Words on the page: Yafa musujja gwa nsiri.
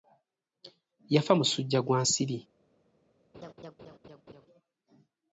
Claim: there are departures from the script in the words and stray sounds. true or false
true